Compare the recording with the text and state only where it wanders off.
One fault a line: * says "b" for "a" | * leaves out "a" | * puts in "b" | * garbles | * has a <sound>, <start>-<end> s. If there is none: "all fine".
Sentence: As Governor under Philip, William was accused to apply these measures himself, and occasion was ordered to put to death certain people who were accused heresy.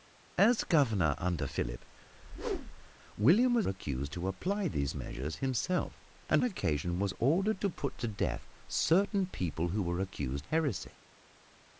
* has a whoosh, 2.1-2.9 s